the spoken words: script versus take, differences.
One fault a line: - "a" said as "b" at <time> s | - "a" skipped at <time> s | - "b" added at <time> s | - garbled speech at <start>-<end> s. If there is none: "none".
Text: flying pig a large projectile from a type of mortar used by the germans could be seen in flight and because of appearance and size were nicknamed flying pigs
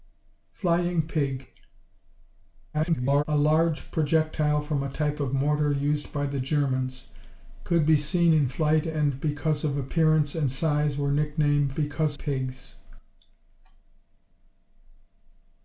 - garbled speech at 2.7-3.2 s
- "flying" said as "because" at 11.7 s